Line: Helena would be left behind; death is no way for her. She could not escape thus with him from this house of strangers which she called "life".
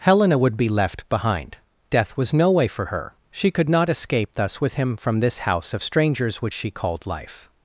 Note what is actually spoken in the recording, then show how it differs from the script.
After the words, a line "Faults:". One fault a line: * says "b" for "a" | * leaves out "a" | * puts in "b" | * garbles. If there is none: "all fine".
Helena would be left behind; death was no way for her. She could not escape thus with him from this house of strangers which she called "life".
Faults:
* says "was" for "is"